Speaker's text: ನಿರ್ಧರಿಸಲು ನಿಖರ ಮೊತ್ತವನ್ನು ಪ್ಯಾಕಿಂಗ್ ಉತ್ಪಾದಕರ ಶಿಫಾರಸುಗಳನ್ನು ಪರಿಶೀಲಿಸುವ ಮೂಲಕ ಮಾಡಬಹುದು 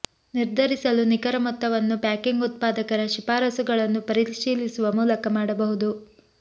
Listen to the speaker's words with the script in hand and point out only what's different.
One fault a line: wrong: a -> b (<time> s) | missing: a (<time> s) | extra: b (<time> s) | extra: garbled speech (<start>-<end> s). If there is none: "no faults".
no faults